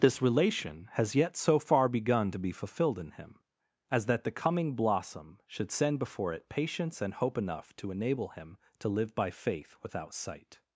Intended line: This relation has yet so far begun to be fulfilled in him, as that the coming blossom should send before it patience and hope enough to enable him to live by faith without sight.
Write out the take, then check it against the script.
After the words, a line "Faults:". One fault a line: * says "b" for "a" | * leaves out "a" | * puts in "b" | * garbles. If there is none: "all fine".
This relation has yet so far begun to be fulfilled in him, as that the coming blossom should send before it patience and hope enough to enable him to live by faith without sight.
Faults:
all fine